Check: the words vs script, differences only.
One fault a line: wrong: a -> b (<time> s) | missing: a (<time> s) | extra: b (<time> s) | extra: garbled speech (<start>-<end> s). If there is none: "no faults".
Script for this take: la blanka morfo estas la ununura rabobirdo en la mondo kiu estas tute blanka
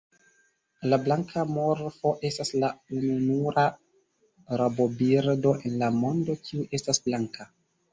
missing: tute (7.0 s)